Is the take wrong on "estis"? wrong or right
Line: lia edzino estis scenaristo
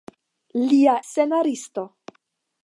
wrong